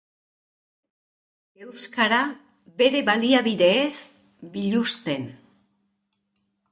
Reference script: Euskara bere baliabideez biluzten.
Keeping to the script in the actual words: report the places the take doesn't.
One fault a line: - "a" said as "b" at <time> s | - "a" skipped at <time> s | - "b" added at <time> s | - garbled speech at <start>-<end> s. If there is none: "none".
none